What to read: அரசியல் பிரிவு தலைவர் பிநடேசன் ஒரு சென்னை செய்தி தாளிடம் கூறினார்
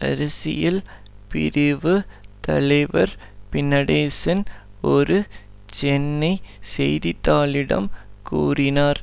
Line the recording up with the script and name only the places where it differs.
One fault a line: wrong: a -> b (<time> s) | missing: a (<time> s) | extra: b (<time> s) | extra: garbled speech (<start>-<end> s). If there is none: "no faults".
no faults